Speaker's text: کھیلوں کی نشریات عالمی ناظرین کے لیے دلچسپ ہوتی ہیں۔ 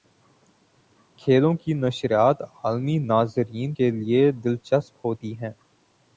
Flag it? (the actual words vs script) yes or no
no